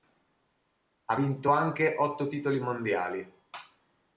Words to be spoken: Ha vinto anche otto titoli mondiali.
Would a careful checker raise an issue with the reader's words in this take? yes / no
no